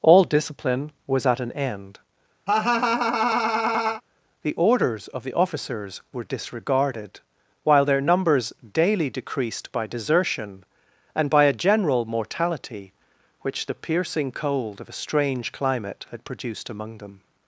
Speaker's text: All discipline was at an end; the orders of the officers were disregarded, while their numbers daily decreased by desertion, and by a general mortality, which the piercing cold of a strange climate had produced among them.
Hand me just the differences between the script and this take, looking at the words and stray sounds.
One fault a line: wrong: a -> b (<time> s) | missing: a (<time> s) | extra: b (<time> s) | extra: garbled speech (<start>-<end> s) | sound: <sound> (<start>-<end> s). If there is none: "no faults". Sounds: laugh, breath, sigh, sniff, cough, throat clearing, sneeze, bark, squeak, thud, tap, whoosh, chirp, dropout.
sound: laugh (2.5-4.0 s)